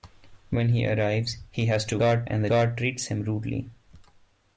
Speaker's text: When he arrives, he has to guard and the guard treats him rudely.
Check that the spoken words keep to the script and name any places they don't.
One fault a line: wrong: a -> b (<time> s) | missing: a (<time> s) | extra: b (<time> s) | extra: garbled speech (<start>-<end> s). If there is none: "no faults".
no faults